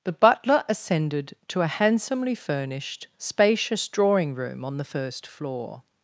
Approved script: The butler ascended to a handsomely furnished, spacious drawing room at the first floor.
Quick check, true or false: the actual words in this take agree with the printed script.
false